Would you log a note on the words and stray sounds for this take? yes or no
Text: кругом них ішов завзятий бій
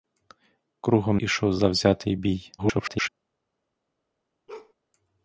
yes